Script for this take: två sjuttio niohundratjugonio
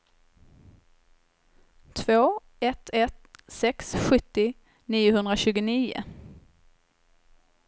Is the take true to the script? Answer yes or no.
no